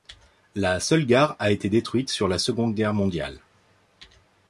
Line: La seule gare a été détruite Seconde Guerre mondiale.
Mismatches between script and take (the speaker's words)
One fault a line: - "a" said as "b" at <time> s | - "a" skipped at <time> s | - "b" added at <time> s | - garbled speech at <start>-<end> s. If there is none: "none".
- "sur la" added at 2.1 s